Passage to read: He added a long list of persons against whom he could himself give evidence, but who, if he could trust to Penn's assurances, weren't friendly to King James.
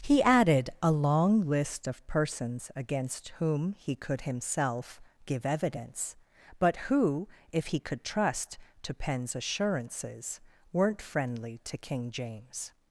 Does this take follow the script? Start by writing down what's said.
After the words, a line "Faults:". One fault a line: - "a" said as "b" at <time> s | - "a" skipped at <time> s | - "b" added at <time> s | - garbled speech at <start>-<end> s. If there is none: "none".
He added a long list of persons against whom he could himself give evidence, but who, if he could trust to Penn's assurances, weren't friendly to King James.
Faults:
none